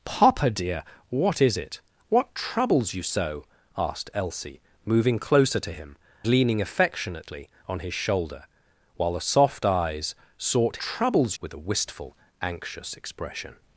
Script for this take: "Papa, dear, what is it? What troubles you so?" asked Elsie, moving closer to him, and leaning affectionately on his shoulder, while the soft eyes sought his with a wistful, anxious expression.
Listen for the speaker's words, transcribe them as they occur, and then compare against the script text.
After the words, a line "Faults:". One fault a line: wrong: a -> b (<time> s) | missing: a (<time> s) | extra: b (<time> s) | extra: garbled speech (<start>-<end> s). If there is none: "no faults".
"Papa, dear, what is it? What troubles you so?" asked Elsie, moving closer to him, leaning affectionately on his shoulder, while the soft eyes sought troubles with a wistful, anxious expression.
Faults:
missing: and (6.0 s)
wrong: his -> troubles (10.8 s)